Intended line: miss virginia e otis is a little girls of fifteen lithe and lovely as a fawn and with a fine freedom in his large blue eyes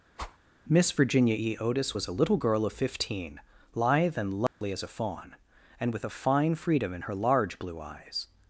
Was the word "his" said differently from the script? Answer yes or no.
yes